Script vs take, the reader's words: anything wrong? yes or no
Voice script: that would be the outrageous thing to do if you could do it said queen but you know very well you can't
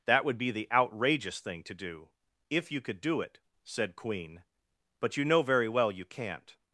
no